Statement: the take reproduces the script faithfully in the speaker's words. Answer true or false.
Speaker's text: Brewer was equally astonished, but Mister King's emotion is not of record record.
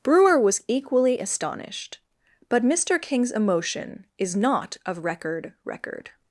true